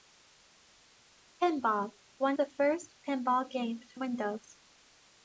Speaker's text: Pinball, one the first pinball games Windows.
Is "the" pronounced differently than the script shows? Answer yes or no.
no